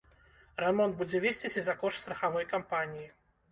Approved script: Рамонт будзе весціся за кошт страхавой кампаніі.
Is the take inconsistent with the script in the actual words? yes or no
no